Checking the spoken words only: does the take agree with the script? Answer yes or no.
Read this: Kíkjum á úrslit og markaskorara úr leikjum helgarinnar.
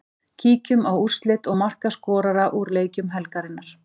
yes